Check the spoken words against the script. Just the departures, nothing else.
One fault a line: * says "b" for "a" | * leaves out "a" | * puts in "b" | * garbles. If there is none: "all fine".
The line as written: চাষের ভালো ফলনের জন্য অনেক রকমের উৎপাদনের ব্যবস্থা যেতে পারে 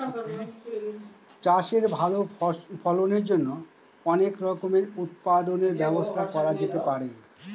* puts in "করা"